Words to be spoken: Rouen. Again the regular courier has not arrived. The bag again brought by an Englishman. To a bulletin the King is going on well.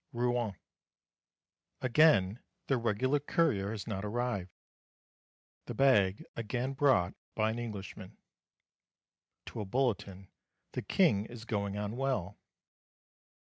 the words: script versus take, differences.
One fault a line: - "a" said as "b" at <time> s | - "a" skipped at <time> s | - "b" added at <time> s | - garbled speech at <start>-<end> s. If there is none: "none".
none